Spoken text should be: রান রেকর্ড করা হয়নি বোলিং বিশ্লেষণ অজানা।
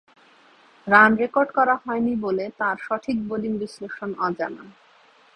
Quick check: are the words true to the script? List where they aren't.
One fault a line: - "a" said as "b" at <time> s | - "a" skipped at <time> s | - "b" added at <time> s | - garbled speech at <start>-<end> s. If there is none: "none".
- "বলে তাঁর সঠিক" added at 2.2 s